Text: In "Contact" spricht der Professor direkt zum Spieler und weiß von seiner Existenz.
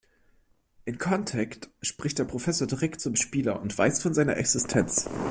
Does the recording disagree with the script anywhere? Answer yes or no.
no